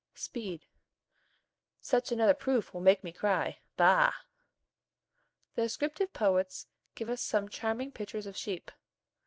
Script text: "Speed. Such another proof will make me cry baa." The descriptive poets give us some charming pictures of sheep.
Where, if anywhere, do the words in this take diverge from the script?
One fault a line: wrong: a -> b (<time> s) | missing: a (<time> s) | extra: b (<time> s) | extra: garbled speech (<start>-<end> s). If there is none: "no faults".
no faults